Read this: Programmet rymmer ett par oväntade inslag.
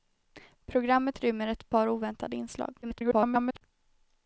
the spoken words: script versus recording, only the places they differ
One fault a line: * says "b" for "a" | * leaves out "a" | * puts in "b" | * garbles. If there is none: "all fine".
* garbles